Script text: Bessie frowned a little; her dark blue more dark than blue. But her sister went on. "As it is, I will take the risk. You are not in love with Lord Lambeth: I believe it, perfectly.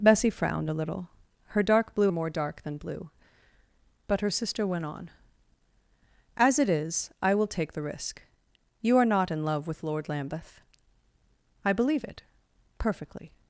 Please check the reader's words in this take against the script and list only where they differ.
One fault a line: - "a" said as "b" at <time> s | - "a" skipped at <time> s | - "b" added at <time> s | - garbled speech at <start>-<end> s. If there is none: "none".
none